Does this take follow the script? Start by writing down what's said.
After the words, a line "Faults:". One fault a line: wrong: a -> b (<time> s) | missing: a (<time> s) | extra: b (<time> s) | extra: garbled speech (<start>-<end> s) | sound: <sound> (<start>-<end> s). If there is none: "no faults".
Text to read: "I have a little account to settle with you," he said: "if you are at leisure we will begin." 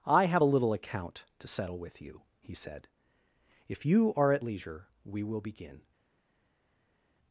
"I have a little account to settle with you," he said: "if you are at leisure we will begin."
Faults:
no faults